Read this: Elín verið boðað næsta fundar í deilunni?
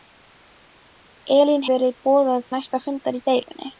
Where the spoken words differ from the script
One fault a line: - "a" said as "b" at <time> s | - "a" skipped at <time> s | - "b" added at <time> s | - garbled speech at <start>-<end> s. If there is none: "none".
none